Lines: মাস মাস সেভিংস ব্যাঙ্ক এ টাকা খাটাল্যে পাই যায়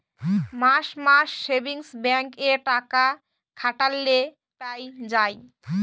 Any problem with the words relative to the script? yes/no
no